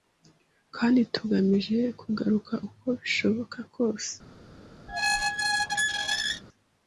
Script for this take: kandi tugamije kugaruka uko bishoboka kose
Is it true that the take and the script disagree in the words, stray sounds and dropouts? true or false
true